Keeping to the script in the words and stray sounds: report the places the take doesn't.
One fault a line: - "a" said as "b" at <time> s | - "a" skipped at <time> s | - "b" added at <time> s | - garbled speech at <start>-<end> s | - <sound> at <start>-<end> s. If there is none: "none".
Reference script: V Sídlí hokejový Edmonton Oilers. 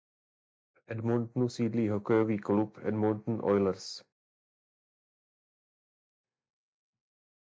- "Edmontonu" added at 0.9 s
- "klub" added at 2.4 s